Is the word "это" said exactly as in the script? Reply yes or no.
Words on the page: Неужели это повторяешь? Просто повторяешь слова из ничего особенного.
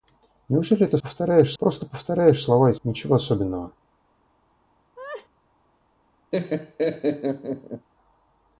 yes